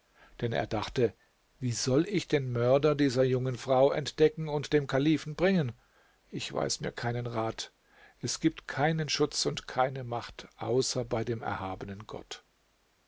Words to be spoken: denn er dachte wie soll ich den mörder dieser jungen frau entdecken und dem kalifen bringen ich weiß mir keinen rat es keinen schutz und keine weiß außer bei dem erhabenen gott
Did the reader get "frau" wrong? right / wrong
right